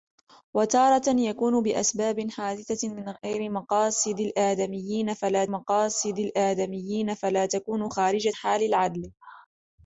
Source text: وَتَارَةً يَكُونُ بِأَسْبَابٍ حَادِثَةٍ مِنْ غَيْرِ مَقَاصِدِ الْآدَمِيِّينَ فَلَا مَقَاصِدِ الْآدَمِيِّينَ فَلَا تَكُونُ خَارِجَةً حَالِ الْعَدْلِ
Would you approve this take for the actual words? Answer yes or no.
yes